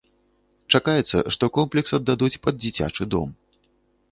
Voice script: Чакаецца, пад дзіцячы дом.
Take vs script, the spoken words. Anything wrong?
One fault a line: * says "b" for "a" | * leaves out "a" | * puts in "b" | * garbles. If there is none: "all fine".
* puts in "што комплекс аддадуць"